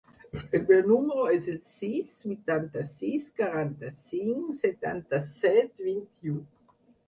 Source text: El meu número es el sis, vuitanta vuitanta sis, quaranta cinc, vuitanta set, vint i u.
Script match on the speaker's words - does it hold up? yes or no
no